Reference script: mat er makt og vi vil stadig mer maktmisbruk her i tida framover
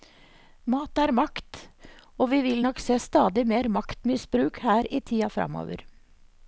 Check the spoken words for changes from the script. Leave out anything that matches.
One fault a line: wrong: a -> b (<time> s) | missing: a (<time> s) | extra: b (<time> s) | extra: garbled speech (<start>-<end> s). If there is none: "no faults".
extra: nok se (2.6 s)